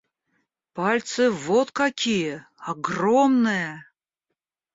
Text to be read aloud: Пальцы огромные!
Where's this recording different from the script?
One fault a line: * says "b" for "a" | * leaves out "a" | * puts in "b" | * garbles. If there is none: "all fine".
* puts in "вот какие"